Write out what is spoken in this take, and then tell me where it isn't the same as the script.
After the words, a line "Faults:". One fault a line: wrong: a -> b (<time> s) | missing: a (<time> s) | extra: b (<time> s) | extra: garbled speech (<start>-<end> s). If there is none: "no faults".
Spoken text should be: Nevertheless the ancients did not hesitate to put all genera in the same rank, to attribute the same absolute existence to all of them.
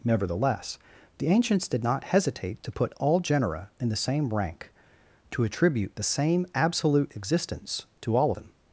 Nevertheless the ancients did not hesitate to put all genera in the same rank, to attribute the same absolute existence to all them.
Faults:
missing: of (8.3 s)